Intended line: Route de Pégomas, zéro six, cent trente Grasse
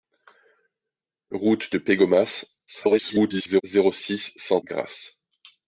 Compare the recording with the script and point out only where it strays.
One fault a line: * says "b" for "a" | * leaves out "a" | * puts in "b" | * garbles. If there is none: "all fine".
* garbles
* leaves out "trente"